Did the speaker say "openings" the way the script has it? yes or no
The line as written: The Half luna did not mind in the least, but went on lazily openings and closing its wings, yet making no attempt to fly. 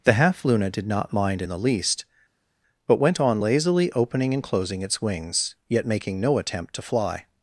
no